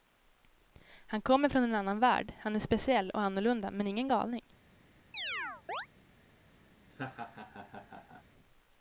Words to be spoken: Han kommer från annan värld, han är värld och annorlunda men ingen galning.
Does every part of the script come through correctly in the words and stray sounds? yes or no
no